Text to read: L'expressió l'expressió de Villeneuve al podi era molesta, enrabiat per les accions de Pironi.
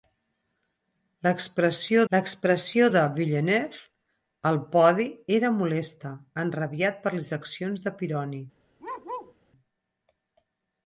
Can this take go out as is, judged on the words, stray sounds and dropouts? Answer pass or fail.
fail